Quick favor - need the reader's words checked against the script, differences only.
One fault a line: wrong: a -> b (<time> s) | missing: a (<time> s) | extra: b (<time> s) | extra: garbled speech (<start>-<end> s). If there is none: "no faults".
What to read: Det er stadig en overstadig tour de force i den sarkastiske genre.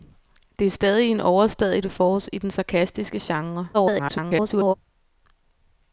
missing: tour (1.8 s)
extra: garbled speech (3.7-4.7 s)